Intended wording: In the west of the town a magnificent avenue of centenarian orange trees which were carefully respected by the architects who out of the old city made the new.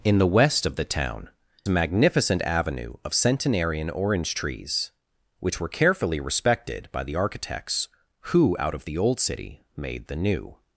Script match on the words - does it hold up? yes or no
yes